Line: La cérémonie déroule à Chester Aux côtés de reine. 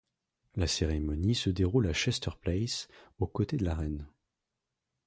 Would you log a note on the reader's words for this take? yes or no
yes